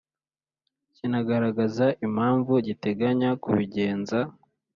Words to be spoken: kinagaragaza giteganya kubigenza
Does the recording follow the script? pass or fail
fail